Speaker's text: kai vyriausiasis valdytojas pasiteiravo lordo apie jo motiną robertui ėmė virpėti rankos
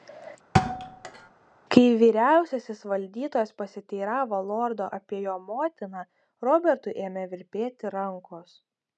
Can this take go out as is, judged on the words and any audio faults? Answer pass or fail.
fail